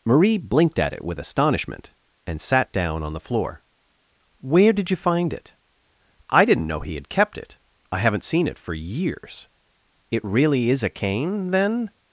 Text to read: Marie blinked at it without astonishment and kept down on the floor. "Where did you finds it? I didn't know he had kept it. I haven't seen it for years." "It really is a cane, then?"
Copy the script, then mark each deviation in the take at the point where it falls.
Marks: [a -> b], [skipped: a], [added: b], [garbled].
Marie blinked at it [without -> with] astonishment and [kept -> sat] down on the floor. "Where did you [finds -> find] it? I didn't know he had kept it. I haven't seen it for years." "It really is a cane, then?"